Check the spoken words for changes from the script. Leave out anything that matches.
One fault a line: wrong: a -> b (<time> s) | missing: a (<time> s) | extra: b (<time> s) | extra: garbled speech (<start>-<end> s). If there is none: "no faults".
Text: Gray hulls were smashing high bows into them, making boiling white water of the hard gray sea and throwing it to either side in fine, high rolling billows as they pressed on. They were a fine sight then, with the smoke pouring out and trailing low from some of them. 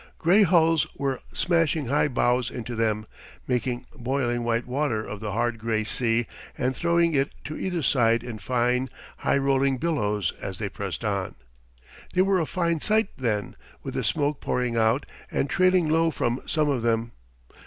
no faults